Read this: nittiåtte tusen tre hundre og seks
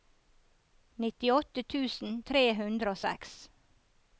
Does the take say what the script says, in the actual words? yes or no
yes